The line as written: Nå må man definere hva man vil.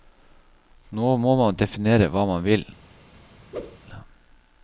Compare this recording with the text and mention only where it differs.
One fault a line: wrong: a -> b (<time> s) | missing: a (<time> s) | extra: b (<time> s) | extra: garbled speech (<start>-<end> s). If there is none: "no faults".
no faults